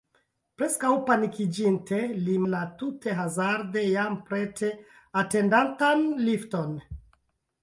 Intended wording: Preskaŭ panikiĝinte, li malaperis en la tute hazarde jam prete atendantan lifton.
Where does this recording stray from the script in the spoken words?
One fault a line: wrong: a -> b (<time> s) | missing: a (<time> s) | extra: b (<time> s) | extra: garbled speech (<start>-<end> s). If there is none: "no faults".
missing: malaperis en (2.4 s)